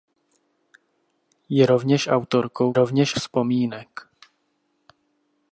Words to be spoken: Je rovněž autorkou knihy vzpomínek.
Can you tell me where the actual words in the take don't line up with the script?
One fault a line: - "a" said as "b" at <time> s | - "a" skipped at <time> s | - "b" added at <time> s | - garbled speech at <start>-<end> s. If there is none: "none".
- "knihy" said as "rovněž" at 2.7 s